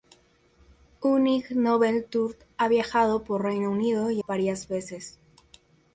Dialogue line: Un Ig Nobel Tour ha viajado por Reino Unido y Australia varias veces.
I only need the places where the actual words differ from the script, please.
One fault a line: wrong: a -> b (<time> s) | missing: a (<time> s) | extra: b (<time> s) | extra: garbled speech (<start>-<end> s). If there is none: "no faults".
missing: Australia (4.2 s)